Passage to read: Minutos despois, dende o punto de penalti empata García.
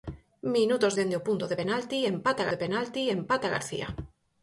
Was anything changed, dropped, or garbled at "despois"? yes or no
yes